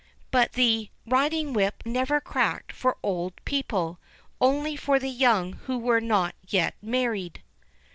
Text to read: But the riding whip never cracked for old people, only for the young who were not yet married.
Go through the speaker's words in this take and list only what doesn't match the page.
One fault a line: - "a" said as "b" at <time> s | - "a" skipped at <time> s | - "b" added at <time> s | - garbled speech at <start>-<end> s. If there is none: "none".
none